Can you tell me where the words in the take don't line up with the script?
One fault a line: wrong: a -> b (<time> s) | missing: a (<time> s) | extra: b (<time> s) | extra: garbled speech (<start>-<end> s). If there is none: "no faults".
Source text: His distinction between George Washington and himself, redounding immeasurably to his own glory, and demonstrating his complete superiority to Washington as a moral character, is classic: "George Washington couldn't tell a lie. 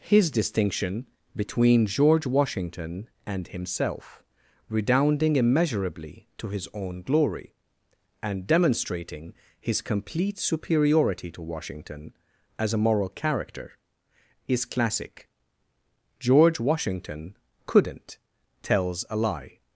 wrong: tell -> tells (18.6 s)